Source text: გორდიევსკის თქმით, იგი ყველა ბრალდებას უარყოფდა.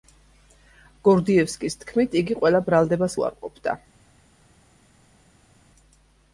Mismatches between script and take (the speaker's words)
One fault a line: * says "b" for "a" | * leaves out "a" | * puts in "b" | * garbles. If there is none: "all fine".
all fine